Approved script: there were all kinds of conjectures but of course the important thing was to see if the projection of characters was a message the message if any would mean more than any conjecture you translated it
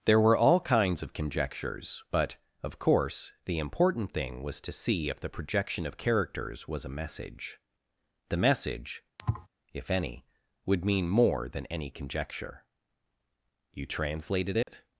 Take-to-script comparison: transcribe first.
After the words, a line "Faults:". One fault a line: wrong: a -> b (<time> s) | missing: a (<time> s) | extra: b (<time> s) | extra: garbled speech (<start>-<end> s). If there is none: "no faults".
there were all kinds of conjectures but of course the important thing was to see if the projection of characters was a message the message if any would mean more than any conjecture you translated it
Faults:
no faults